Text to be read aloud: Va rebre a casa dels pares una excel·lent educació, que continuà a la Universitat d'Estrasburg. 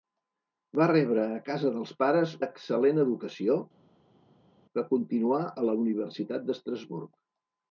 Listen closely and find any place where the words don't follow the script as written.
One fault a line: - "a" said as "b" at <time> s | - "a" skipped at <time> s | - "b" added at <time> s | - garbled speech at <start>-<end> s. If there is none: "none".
- "una" skipped at 2.3 s